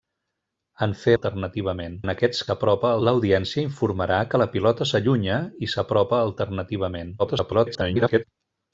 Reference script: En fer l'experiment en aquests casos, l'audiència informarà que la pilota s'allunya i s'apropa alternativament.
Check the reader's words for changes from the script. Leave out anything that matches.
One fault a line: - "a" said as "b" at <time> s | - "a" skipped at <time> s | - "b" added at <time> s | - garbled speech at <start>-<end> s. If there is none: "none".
- "l'experiment" said as "alternativament" at 1.1 s
- "casos" said as "s'apropa" at 2.5 s
- garbled speech at 7.2-8.2 s